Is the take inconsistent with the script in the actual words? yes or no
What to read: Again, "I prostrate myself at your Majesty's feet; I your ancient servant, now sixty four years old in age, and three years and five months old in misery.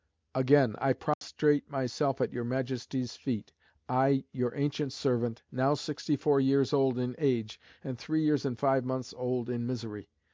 no